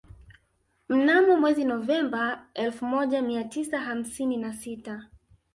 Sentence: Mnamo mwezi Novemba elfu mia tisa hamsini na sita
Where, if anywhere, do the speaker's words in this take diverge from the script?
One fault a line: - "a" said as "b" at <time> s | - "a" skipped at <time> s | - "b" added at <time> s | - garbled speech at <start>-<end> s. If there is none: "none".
- "moja" added at 2.9 s